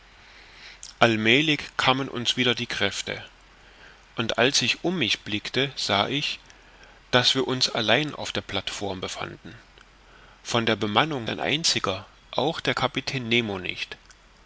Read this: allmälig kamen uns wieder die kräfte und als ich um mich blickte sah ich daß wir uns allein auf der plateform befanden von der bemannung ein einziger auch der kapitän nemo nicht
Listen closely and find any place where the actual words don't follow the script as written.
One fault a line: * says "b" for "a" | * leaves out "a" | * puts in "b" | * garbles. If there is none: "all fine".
all fine